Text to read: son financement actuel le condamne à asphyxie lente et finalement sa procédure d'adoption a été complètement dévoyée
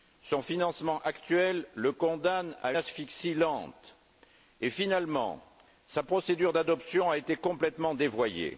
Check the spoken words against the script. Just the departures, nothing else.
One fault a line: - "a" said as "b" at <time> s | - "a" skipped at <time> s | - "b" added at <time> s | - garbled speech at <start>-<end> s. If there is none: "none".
none